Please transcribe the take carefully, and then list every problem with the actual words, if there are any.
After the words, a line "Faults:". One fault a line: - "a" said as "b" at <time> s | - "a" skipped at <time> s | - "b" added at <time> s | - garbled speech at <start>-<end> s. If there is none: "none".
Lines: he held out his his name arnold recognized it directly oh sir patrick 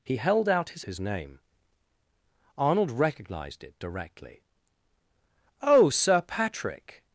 he held out his his name arnold recognized it directly oh sir patrick
Faults:
none